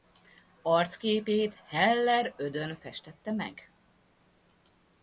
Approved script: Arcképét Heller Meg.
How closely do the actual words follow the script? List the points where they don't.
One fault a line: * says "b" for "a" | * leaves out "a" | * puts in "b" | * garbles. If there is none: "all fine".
* puts in "Ödön festette"